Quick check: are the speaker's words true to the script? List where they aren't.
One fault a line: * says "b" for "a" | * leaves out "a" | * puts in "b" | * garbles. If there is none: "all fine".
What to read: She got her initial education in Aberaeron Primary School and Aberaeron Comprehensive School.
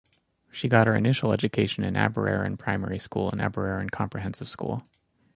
all fine